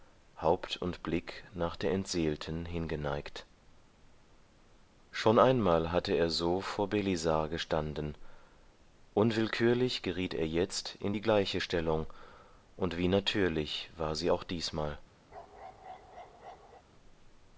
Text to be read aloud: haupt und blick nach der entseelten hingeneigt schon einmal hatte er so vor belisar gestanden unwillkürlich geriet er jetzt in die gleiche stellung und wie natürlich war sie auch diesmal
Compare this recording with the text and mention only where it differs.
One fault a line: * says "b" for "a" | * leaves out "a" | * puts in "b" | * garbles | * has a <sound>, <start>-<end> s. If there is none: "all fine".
* has a bark, 15.3-16.8 s